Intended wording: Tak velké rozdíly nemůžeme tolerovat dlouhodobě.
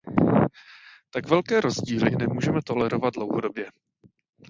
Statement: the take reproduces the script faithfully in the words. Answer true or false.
true